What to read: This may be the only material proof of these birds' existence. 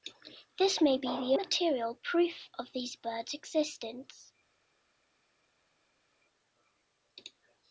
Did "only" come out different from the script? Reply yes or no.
yes